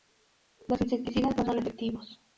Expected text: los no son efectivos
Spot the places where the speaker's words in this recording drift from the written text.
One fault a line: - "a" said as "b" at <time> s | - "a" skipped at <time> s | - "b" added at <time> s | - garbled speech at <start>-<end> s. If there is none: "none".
- "insecticidas" added at 0.8 s